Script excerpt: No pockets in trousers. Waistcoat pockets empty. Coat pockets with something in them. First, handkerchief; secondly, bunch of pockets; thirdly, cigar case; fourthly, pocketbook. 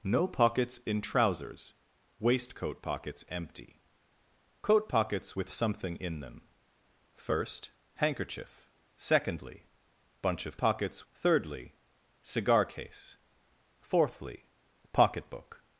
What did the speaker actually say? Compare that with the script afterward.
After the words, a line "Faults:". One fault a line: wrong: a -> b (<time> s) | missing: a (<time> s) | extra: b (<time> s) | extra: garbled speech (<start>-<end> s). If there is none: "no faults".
No pockets in trousers. Waistcoat pockets empty. Coat pockets with something in them. First, handkerchief; secondly, bunch of pockets; thirdly, cigar case; fourthly, pocketbook.
Faults:
no faults